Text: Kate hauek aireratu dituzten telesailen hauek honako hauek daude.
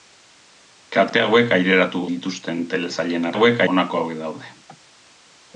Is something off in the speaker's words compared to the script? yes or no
no